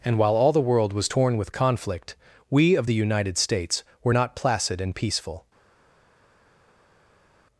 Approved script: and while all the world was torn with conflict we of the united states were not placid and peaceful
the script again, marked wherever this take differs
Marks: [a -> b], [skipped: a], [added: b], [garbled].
and while all the world was torn with conflict we of the united states were not placid and peaceful